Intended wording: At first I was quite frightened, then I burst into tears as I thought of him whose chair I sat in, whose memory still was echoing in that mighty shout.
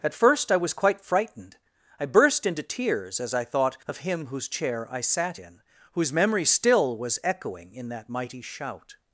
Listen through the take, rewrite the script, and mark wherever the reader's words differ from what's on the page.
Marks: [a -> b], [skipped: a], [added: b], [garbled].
At first I was quite frightened, [skipped: then] I burst into tears as I thought of him whose chair I sat in, whose memory still was echoing in that mighty shout.